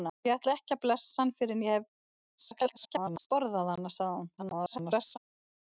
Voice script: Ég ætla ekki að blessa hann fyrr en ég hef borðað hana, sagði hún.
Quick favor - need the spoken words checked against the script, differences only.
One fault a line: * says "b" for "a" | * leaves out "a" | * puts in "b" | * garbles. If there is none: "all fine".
* garbles
* garbles